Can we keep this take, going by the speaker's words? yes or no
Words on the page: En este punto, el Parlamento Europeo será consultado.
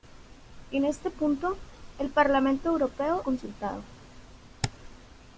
no